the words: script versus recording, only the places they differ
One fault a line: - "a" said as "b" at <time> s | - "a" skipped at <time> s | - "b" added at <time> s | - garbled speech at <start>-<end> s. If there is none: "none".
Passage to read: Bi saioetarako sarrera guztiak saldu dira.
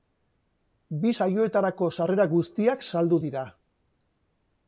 none